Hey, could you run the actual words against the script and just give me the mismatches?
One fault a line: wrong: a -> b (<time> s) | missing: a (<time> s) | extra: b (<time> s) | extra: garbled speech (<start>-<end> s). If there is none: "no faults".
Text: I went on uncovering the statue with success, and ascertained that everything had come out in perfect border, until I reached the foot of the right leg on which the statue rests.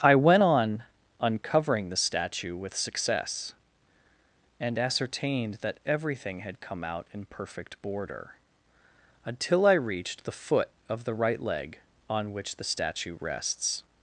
no faults